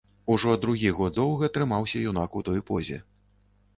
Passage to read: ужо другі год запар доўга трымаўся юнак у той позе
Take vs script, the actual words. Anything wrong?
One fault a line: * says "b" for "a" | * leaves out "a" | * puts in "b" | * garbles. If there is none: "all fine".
* leaves out "запар"